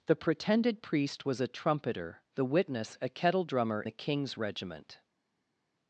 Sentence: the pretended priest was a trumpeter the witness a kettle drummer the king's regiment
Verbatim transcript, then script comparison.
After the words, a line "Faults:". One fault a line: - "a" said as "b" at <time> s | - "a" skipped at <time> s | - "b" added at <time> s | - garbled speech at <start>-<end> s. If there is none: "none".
the pretended priest was a trumpeter the witness a kettle drummer the king's regiment
Faults:
none